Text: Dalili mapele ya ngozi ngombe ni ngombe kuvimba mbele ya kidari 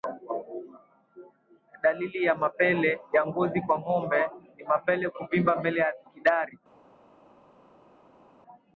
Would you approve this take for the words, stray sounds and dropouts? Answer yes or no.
no